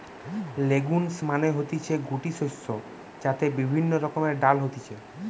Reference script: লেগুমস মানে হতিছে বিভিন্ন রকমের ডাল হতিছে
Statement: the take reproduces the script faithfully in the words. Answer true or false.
false